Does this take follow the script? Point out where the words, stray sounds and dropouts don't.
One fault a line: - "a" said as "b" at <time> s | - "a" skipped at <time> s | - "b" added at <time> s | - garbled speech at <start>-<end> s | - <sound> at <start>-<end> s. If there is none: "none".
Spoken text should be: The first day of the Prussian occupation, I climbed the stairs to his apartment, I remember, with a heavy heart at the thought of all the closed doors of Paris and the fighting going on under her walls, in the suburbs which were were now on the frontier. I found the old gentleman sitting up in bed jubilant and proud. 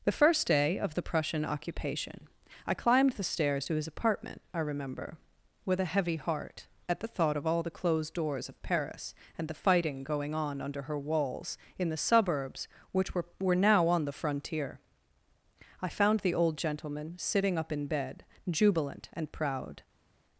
none